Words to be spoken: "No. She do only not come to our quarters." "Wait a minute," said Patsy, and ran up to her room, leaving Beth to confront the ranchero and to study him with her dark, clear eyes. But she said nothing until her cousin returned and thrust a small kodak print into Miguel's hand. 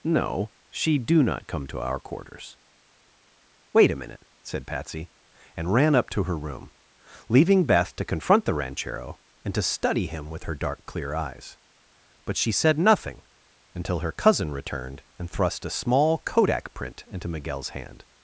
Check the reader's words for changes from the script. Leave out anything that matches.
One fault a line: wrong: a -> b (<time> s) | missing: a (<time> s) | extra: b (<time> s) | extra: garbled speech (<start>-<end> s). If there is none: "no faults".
missing: only (1.2 s)